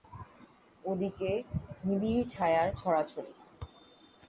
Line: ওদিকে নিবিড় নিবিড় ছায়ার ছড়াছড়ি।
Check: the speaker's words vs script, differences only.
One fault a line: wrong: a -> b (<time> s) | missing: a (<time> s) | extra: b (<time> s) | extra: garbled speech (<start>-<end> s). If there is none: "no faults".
missing: নিবিড় (2.2 s)